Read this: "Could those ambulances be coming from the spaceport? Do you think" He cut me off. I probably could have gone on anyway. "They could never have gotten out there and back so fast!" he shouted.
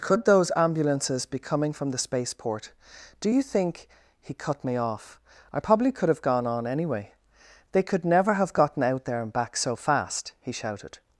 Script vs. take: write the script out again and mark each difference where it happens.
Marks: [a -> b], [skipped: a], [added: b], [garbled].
"Could those ambulances be coming from the spaceport? Do you think" He cut me off. I probably could have gone on anyway. "They could never have gotten out there and back so fast!" he shouted.